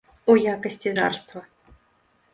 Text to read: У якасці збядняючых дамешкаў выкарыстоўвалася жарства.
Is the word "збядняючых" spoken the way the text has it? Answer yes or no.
no